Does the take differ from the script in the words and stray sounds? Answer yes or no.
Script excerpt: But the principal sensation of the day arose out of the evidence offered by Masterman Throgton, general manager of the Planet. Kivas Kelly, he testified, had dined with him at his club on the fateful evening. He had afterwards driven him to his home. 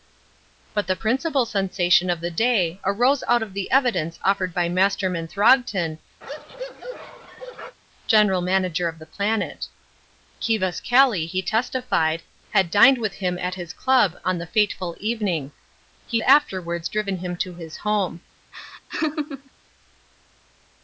yes